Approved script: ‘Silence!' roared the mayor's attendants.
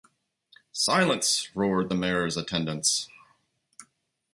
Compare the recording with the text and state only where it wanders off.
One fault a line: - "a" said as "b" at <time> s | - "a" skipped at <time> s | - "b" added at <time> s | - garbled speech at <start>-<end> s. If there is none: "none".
none